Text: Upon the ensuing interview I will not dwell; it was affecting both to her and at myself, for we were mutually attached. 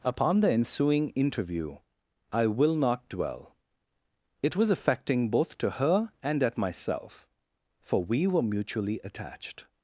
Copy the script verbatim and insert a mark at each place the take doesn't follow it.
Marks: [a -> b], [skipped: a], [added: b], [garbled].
Upon the ensuing interview I will not dwell; it was affecting both to her and at myself, for we were mutually attached.